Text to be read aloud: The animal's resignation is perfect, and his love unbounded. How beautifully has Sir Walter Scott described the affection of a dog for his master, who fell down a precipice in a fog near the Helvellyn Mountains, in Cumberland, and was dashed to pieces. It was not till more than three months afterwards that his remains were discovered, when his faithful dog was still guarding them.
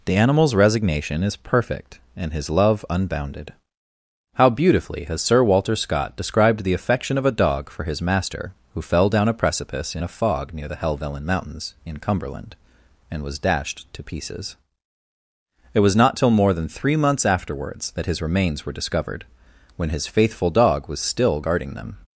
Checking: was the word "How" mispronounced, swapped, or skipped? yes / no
no